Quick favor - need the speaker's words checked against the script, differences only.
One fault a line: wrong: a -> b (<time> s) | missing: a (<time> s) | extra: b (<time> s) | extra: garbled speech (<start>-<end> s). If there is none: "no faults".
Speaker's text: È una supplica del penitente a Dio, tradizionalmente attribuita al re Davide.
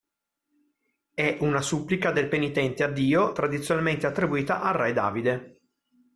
no faults